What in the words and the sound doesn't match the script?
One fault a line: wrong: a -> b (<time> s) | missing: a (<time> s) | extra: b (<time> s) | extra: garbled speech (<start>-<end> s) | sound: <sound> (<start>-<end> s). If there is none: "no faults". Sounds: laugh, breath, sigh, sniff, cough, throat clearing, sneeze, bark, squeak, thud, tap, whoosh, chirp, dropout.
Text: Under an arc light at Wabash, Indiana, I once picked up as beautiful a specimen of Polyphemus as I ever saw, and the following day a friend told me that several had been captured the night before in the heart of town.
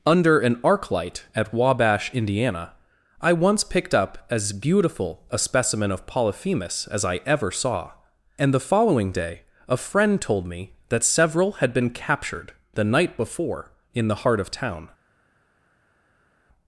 no faults